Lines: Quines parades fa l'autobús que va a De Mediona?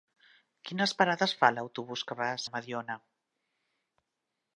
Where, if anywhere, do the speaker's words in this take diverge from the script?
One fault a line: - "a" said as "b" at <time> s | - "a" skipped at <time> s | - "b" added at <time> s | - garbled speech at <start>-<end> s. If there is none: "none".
none